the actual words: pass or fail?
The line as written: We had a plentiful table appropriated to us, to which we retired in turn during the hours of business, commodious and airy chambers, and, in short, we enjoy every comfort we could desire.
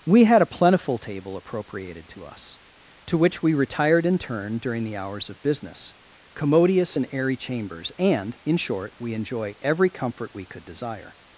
pass